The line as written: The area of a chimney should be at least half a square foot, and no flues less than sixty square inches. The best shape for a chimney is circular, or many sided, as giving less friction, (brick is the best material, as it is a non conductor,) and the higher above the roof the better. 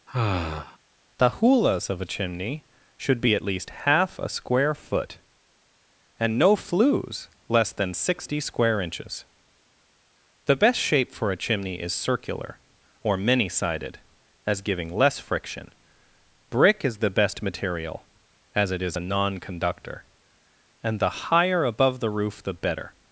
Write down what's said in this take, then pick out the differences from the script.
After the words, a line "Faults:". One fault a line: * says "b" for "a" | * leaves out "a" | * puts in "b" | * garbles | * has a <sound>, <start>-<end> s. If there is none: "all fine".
The hulas of a chimney should be at least half a square foot, and no flues less than sixty square inches. The best shape for a chimney is circular, or many sided, as giving less friction, (brick is the best material, as it is a non conductor,) and the higher above the roof the better.
Faults:
* has a sigh, 0.1-0.8 s
* says "hulas" for "area"